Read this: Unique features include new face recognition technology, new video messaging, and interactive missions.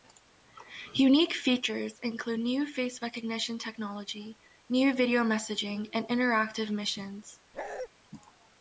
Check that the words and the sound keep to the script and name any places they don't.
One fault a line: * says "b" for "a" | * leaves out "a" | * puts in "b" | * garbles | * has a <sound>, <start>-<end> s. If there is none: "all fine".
* has a bark, 7.5-7.9 s